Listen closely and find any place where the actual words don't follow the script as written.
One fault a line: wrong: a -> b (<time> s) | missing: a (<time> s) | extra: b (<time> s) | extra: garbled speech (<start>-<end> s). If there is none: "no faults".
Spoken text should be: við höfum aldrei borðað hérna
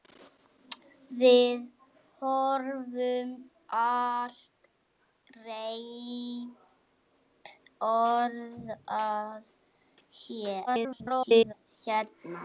extra: garbled speech (10.7-11.5 s)